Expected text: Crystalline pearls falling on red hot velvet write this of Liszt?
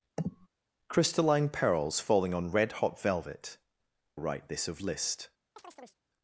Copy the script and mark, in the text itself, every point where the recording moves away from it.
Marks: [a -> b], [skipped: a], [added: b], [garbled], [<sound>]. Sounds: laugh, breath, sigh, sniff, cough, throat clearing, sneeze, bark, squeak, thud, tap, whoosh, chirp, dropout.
[sniff] Crystalline pearls falling on red hot velvet write this of Liszt? [chirp]